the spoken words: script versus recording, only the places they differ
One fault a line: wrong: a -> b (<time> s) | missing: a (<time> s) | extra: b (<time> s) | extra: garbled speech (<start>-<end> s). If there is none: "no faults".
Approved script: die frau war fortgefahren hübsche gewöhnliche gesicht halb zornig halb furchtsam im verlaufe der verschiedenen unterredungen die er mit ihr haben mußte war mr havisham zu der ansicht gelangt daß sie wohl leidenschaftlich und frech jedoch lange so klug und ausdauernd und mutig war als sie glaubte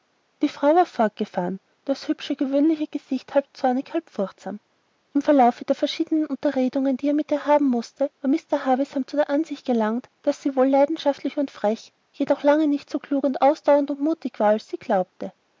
extra: das (1.9 s)
extra: nicht (12.7 s)